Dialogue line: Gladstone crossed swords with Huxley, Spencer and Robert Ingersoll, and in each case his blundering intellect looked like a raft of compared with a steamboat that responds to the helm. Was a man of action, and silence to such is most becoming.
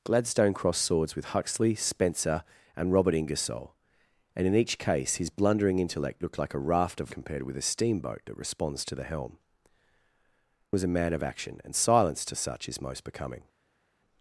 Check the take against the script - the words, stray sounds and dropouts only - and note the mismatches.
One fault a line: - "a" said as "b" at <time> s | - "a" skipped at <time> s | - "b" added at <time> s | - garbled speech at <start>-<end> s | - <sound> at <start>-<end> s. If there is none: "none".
none